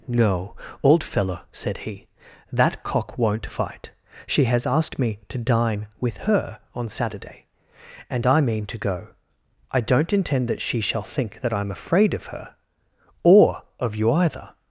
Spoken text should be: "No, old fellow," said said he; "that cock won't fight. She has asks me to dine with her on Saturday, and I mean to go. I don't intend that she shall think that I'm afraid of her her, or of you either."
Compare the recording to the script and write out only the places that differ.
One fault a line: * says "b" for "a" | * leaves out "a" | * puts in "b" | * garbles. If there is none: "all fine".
* leaves out "said"
* says "asked" for "asks"
* leaves out "her"